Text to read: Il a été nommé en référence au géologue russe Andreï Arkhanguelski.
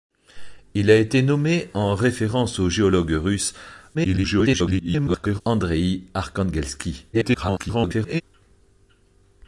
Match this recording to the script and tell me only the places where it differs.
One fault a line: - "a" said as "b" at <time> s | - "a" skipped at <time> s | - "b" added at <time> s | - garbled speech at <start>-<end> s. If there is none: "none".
- garbled speech at 3.9-5.4 s
- garbled speech at 7.1-8.2 s